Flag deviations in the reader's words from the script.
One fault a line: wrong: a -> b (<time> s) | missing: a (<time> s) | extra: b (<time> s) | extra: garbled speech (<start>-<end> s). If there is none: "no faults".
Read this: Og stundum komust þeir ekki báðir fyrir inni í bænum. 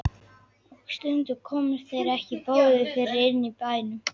no faults